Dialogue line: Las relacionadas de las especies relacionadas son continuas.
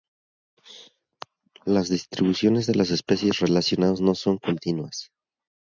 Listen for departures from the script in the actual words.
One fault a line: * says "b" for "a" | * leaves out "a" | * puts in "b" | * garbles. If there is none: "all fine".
* says "distribuciones" for "relacionadas"
* puts in "no"